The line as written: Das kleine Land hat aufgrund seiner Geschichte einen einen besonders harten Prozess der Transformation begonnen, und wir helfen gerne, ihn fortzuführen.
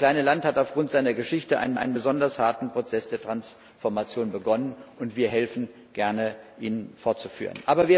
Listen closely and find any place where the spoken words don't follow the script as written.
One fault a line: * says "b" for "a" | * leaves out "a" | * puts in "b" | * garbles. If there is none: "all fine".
all fine